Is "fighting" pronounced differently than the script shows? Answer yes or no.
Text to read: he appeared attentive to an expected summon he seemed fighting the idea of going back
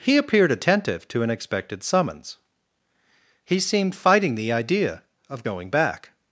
no